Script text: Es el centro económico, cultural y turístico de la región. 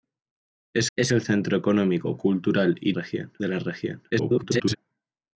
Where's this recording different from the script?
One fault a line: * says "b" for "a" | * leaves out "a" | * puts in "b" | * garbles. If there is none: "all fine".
* puts in "es"
* says "región" for "turístico"
* garbles